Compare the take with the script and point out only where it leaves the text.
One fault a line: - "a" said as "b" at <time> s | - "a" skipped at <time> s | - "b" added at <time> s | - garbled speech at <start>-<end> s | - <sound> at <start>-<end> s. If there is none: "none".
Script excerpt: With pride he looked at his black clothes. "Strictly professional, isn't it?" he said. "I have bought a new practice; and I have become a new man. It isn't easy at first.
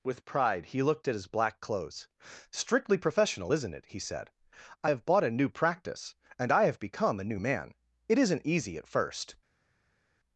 none